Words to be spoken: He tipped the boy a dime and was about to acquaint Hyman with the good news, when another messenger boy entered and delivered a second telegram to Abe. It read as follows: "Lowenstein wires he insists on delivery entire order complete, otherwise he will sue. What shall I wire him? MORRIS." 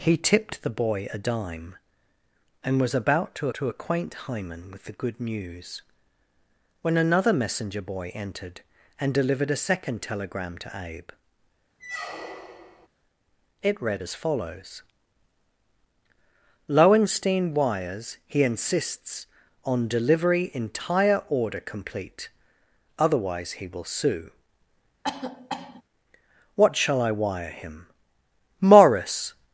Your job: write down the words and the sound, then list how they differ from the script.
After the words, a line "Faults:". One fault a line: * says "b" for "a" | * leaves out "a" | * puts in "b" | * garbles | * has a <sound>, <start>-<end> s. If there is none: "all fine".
He tipped the boy a dime and was about to to acquaint Hyman with the good news, when another messenger boy entered and delivered a second telegram to Abe. It read as follows: "Lowenstein wires he insists on delivery entire order complete, otherwise he will sue. What shall I wire him? MORRIS."
Faults:
* puts in "to"
* has a squeak, 11.8-12.9 s
* has a cough, 25.0-25.8 s